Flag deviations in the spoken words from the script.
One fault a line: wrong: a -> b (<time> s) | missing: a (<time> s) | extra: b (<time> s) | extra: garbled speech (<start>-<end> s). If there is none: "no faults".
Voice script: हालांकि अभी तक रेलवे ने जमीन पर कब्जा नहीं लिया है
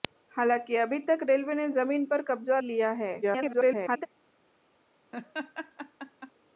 missing: नहीं (2.6 s)
extra: garbled speech (3.2-4.1 s)